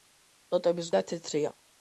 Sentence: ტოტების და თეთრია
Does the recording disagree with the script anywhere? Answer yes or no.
no